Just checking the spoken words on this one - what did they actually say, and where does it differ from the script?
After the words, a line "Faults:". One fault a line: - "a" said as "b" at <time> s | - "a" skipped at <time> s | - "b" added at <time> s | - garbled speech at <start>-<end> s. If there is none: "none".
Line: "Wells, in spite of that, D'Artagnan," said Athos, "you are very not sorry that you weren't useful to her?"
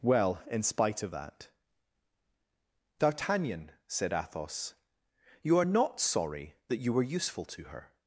"Well, in spite of that, D'Artagnan," said Athos, "you are not sorry that you were useful to her?"
Faults:
- "Wells" said as "Well" at 0.0 s
- "very" skipped at 5.7 s
- "weren't" said as "were" at 6.9 s